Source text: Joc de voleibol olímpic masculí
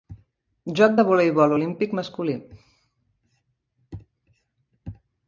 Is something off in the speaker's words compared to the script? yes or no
no